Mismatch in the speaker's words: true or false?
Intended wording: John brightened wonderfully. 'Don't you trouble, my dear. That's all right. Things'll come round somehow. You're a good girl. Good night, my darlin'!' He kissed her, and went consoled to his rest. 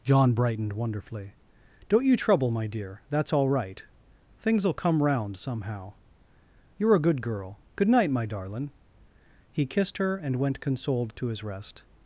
false